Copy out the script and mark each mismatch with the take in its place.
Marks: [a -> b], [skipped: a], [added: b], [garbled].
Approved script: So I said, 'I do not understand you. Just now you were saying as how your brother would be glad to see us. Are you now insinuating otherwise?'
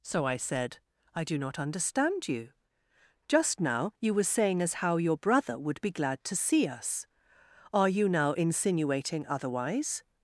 So I said, 'I do not understand you. Just now you were saying as how your brother would be glad to see us. Are you now insinuating otherwise?'